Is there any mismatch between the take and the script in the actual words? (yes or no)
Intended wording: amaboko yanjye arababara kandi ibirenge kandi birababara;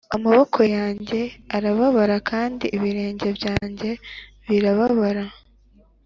yes